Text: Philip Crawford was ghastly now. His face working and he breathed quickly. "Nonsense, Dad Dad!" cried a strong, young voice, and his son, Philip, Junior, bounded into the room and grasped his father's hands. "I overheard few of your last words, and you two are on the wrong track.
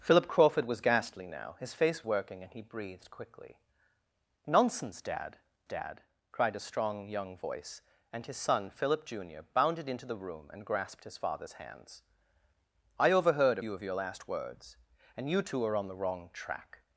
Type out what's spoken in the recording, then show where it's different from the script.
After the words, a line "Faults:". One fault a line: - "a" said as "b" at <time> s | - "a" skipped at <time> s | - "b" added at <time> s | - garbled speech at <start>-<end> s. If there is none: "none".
Philip Crawford was ghastly now. His face working and he breathed quickly. "Nonsense, Dad Dad!" cried a strong, young voice, and his son, Philip, Junior, bounded into the room and grasped his father's hands. "I overheard few of your last words, and you two are on the wrong track.
Faults:
none